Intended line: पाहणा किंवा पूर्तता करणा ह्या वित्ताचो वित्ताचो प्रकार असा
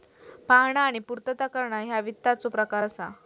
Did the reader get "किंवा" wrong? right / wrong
wrong